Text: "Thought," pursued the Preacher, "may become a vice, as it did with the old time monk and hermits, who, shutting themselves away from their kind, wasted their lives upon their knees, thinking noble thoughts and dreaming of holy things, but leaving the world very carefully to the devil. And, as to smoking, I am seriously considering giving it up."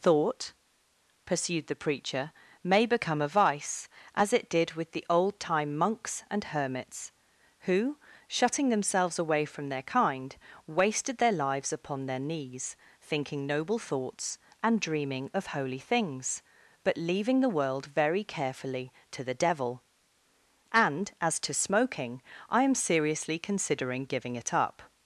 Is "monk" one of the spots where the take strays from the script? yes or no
yes